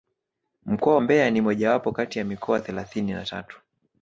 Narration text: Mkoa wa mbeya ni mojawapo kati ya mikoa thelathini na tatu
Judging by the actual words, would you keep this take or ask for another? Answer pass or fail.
fail